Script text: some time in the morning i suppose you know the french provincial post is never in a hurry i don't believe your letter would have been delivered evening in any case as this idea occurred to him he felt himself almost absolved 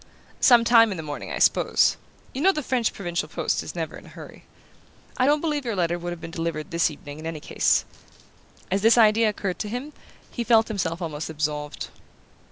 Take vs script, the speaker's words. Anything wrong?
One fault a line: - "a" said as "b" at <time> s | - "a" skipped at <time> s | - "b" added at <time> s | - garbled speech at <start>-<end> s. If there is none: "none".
- "this" added at 6.7 s